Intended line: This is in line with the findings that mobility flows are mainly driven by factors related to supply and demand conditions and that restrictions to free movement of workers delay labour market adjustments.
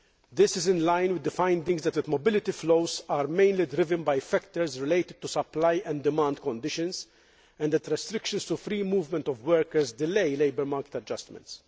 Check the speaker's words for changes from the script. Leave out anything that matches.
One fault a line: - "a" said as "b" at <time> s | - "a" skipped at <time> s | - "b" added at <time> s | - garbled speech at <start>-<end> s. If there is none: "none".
- "that" added at 1.9 s